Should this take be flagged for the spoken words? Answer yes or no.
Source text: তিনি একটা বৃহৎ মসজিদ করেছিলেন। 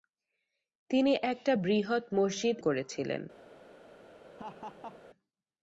no